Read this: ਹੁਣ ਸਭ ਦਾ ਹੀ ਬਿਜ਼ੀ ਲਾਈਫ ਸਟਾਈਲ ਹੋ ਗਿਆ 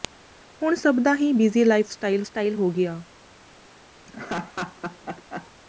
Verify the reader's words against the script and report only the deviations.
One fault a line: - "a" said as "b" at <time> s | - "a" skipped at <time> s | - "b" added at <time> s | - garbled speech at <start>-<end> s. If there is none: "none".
- "ਸਟਾਈਲ" added at 2.2 s